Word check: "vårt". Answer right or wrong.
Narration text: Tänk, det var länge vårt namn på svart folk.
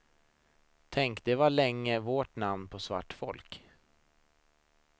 right